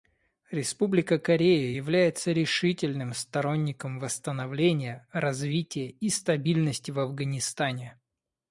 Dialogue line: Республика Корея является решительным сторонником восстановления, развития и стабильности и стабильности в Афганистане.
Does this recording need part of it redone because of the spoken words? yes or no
yes